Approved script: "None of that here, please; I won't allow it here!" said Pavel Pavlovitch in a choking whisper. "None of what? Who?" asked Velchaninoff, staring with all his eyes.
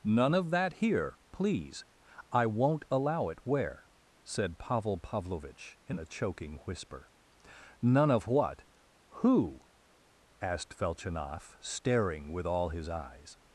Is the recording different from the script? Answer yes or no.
yes